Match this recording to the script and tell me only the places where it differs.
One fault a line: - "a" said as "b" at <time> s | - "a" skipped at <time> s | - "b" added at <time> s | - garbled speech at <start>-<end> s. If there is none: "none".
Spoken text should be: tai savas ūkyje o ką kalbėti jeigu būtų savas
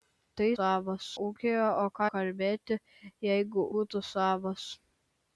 none